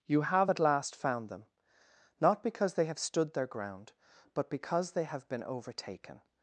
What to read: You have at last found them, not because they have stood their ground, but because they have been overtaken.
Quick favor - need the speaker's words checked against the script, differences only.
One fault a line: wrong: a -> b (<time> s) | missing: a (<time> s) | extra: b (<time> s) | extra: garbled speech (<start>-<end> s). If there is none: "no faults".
no faults